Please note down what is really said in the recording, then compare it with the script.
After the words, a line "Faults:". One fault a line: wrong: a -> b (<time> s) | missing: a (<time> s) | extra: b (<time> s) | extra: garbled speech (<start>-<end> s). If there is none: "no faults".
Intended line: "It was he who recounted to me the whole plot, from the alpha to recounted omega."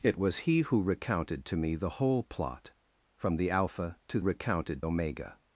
"It was he who recounted to me the whole plot, from the alpha to recounted omega."
Faults:
no faults